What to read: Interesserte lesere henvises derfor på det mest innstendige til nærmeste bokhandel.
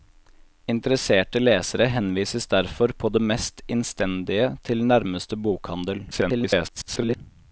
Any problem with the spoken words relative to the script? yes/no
yes